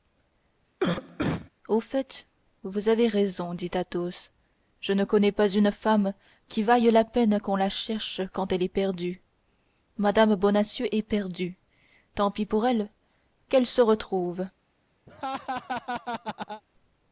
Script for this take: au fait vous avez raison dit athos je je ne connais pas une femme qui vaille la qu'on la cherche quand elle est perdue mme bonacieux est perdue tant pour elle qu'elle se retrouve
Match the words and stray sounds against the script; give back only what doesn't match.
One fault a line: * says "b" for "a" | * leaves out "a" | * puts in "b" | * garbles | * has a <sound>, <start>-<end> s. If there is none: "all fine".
* has a cough, 0.8-1.5 s
* leaves out "je"
* puts in "peine"
* puts in "pis"
* has a laugh, 15.1-16.6 s